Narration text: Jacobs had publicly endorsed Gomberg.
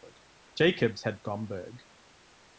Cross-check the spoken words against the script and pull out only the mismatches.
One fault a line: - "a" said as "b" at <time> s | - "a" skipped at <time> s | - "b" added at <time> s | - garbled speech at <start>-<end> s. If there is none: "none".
- "publicly endorsed" skipped at 1.2 s